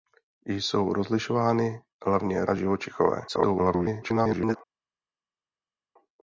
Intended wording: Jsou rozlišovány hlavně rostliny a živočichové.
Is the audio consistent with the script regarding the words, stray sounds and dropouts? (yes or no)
no